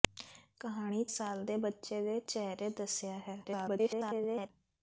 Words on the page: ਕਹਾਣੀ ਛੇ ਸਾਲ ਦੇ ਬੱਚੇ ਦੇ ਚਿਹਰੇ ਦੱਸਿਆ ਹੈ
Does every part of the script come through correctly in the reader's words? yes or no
no